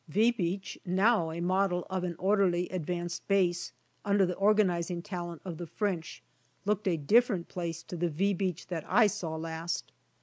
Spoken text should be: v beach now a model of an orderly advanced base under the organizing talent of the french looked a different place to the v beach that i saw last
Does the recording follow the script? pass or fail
pass